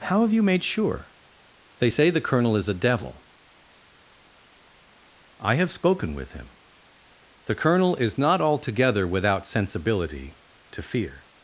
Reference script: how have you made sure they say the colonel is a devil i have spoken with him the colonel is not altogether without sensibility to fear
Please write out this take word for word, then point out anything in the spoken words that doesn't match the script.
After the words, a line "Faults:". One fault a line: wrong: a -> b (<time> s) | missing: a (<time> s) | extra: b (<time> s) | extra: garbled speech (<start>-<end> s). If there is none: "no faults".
how have you made sure they say the colonel is a devil i have spoken with him the colonel is not altogether without sensibility to fear
Faults:
no faults